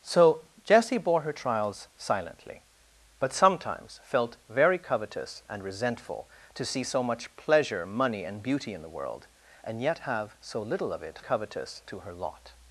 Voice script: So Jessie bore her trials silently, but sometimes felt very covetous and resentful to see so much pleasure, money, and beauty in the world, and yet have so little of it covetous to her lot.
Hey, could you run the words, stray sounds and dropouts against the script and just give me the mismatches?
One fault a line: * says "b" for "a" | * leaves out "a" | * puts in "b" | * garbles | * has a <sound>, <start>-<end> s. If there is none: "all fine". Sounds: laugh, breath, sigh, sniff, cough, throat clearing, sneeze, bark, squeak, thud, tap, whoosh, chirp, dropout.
all fine